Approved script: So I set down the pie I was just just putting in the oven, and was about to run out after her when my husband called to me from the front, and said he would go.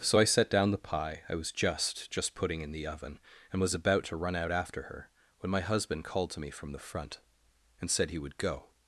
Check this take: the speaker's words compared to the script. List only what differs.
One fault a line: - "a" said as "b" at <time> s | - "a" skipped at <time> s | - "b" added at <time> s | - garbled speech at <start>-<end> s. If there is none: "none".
none